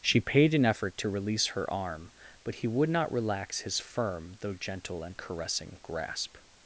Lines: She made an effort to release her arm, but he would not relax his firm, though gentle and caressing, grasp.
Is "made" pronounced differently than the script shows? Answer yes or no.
yes